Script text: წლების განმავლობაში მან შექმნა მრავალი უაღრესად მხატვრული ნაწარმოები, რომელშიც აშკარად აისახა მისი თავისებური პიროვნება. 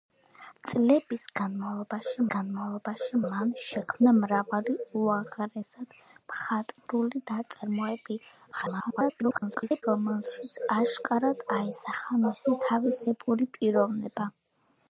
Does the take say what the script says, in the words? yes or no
no